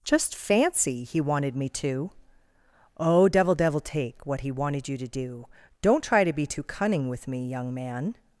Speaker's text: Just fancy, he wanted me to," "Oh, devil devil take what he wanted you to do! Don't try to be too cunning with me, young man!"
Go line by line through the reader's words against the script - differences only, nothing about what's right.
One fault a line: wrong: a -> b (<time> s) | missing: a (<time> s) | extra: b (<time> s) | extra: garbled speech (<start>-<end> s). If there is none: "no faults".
no faults